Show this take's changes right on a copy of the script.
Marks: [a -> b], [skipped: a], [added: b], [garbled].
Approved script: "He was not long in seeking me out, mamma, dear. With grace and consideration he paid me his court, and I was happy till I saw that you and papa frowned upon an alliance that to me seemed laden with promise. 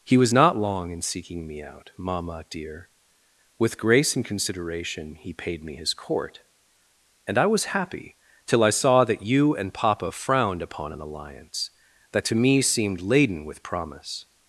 "He was not long in seeking me out, mamma, dear. With grace and consideration he paid me his court, and I was happy till I saw that you and papa frowned upon an alliance that to me seemed laden with promise.